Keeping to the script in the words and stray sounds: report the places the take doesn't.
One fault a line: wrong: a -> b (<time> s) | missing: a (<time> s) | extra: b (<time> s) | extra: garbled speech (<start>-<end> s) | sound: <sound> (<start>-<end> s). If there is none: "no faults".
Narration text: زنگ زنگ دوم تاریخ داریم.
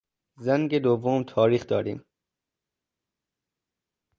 missing: زنگ (0.8 s)